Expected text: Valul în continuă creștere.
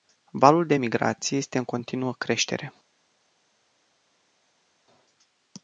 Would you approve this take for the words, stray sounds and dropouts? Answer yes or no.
no